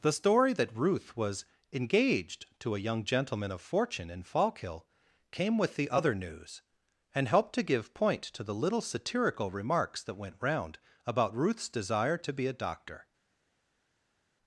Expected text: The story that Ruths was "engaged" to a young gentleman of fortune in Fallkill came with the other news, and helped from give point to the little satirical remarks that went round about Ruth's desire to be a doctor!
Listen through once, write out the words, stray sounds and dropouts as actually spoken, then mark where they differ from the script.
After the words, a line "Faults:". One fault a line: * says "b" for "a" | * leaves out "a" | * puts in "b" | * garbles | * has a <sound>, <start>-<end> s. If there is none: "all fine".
The story that Ruth was "engaged" to a young gentleman of fortune in Fallkill came with the other news, and helped to give point to the little satirical remarks that went round about Ruth's desire to be a doctor!
Faults:
* says "Ruth" for "Ruths"
* says "to" for "from"